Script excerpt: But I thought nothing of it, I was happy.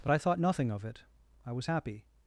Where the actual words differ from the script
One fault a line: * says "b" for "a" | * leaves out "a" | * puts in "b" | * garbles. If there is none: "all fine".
all fine